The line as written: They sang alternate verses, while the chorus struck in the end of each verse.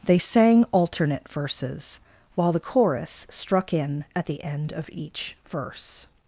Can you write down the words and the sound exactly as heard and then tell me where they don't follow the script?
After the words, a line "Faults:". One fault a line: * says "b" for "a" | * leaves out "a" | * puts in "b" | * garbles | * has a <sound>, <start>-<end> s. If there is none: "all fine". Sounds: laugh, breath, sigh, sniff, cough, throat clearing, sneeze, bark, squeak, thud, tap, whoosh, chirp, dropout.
They sang alternate verses, while the chorus struck in at the end of each verse.
Faults:
* puts in "at"